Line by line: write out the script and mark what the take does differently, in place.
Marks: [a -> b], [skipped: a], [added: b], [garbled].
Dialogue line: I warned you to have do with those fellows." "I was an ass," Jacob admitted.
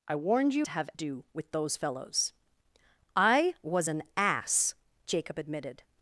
I warned you to have do with those fellows." "I was an ass," Jacob admitted.